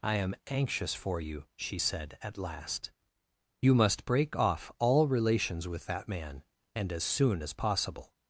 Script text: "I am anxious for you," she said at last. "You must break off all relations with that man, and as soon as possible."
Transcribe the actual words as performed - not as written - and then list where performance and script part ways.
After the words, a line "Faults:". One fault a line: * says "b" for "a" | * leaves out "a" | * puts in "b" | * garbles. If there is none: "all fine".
"I am anxious for you," she said at last. "You must break off all relations with that man, and as soon as possible."
Faults:
all fine